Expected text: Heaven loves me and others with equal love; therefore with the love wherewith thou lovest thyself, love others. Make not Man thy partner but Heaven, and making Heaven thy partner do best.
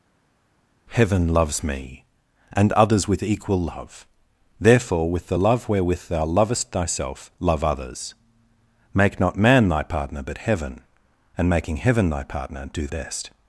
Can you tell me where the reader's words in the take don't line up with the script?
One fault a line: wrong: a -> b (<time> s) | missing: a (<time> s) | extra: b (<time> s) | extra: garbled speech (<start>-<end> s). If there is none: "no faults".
no faults